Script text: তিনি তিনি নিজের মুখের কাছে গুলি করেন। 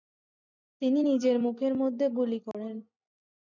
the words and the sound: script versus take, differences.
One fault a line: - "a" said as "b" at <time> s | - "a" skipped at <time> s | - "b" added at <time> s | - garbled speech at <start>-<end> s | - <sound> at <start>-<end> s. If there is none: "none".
- "তিনি" skipped at 1.0 s
- "কাছে" said as "মধ্যে" at 1.7 s
- dropout at 2.5-2.5 s